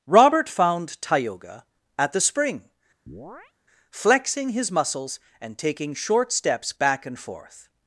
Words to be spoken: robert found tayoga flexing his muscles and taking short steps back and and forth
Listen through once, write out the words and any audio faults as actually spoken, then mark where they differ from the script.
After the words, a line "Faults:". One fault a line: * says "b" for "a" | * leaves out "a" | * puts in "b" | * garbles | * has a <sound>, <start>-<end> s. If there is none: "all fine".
robert found tayoga at the spring flexing his muscles and taking short steps back and forth
Faults:
* puts in "at the spring"
* has a chirp, 3.1-3.5 s
* leaves out "and"